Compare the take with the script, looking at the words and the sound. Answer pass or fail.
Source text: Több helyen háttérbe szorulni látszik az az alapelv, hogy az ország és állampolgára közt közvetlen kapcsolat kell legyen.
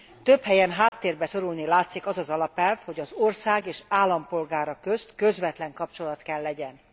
fail